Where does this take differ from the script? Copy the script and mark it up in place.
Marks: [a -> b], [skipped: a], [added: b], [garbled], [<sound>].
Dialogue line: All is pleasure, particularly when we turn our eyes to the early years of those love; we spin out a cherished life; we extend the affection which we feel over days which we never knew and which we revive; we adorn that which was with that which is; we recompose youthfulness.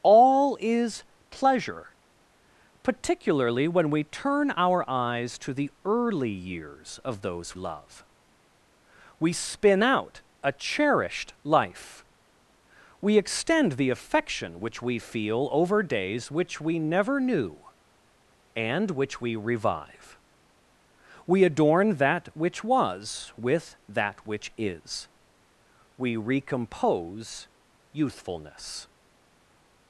All is pleasure, particularly when we turn our eyes to the early years of those love; we spin out a cherished life; we extend the affection which we feel over days which we never knew and which we revive; we adorn that which was with that which is; we recompose youthfulness.